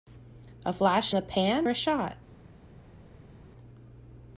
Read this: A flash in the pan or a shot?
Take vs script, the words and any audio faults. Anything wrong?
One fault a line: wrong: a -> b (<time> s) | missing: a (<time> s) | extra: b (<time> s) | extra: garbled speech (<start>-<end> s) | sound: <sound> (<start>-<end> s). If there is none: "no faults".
missing: in (1.1 s)
missing: or (1.7 s)